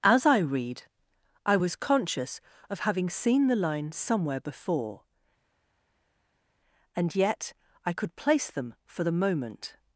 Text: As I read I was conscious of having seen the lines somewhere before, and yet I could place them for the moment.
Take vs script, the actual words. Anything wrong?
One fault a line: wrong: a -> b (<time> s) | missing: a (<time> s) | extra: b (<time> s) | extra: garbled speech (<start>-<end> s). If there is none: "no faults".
no faults